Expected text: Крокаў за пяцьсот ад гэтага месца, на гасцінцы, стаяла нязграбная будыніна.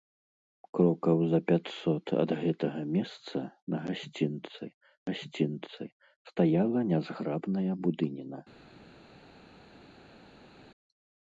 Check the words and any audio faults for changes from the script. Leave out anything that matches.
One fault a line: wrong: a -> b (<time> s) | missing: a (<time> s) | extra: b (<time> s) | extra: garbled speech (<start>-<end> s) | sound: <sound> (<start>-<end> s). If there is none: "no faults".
extra: гасцінцы (5.1 s)